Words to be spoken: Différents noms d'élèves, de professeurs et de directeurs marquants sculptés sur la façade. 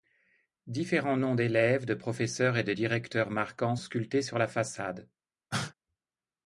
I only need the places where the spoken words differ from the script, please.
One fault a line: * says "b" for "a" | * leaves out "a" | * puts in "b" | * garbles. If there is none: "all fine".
all fine